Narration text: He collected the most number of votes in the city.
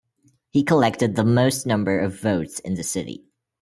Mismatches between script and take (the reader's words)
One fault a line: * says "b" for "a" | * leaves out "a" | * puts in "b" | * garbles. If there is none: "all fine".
all fine